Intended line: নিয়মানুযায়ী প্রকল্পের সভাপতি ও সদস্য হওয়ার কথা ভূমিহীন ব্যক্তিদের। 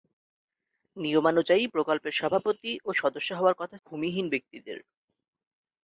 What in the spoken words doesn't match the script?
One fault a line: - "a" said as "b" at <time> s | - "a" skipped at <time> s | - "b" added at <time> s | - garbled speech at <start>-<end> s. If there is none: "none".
none